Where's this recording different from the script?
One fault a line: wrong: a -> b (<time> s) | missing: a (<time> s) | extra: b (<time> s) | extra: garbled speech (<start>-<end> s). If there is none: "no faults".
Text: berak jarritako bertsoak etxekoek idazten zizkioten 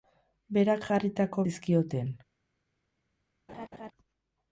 missing: bertsoak etxekoek idazten (1.4 s)